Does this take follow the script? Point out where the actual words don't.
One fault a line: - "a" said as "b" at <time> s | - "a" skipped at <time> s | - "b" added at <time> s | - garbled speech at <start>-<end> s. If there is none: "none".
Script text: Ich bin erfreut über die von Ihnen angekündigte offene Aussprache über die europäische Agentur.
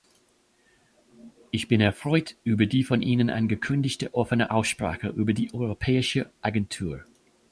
none